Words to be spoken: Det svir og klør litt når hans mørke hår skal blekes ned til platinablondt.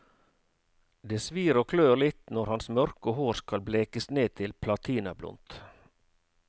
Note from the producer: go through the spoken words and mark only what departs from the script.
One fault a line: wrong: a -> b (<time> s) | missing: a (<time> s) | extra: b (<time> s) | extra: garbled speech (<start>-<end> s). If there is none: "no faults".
no faults